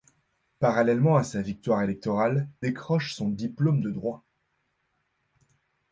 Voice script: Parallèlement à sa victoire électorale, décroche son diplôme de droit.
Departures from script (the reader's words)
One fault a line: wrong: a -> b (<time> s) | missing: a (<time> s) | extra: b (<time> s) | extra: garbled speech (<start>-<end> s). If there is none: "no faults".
no faults